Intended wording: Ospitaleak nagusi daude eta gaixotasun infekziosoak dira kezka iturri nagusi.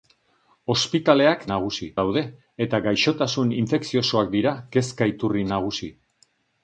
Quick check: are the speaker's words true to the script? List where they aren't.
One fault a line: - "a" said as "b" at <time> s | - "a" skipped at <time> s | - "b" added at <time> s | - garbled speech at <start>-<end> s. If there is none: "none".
none